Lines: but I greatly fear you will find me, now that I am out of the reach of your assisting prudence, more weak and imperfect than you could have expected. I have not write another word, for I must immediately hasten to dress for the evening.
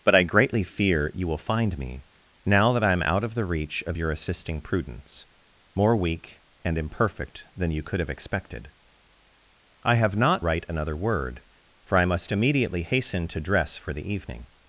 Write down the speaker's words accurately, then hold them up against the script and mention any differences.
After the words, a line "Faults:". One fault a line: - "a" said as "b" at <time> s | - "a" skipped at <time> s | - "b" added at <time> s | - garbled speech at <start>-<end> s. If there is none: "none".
but I greatly fear you will find me, now that I am out of the reach of your assisting prudence, more weak and imperfect than you could have expected. I have not write another word, for I must immediately hasten to dress for the evening.
Faults:
none